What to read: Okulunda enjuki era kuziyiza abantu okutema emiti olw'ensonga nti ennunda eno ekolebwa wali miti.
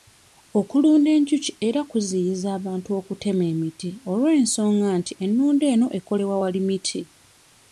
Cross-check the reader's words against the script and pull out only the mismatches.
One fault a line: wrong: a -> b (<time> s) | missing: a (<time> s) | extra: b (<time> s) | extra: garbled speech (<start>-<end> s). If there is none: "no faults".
no faults